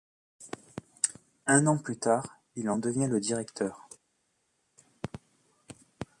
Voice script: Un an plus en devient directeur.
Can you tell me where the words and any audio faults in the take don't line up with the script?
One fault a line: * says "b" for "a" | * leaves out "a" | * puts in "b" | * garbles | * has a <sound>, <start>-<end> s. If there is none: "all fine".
* puts in "tard il"
* puts in "le"